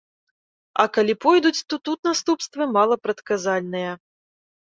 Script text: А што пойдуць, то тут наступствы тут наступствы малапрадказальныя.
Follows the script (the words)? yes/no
no